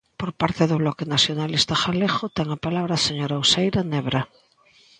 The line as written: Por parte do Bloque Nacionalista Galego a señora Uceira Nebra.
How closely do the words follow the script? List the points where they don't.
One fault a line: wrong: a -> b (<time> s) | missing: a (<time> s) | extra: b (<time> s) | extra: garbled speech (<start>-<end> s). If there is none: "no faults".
extra: ten a palabra (2.4 s)